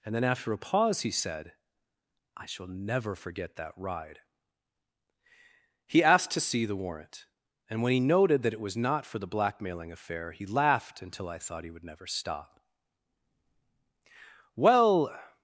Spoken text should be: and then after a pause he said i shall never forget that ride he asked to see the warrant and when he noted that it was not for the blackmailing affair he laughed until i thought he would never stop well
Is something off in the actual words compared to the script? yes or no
no